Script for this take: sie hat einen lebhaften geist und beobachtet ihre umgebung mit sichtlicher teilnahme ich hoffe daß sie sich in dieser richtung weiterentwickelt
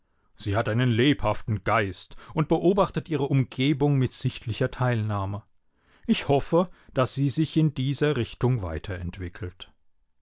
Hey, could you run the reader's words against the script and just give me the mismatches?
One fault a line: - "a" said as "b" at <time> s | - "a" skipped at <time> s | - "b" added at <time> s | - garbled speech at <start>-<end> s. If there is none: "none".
none